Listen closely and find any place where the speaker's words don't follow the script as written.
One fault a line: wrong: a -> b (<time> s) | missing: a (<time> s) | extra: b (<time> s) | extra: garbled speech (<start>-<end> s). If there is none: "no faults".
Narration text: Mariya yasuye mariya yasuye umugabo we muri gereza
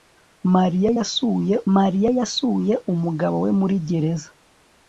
no faults